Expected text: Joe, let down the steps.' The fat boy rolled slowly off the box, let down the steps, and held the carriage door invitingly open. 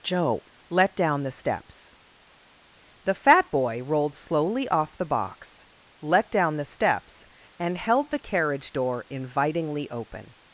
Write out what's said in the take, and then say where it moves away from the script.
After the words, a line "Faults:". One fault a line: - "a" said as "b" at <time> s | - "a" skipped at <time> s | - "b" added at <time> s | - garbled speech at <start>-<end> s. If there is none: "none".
Joe, let down the steps.' The fat boy rolled slowly off the box, let down the steps, and held the carriage door invitingly open.
Faults:
none